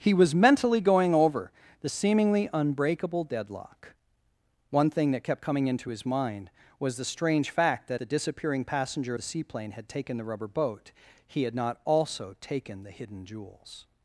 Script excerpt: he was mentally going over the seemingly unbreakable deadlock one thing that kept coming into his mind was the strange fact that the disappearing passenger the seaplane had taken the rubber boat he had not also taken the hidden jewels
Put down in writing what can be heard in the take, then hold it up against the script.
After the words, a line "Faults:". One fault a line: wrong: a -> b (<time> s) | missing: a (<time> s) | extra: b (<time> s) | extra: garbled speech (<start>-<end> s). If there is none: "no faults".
he was mentally going over the seemingly unbreakable deadlock one thing that kept coming into his mind was the strange fact that the disappearing passenger the seaplane had taken the rubber boat he had not also taken the hidden jewels
Faults:
no faults